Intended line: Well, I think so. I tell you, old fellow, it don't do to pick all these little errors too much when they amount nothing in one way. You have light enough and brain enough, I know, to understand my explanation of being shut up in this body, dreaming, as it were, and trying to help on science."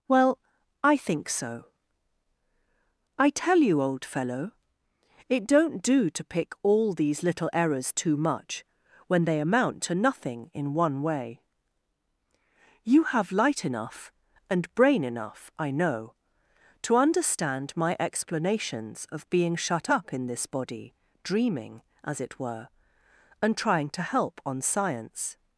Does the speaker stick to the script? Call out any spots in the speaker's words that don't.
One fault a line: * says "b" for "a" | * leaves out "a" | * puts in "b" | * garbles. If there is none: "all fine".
* puts in "to"
* says "explanations" for "explanation"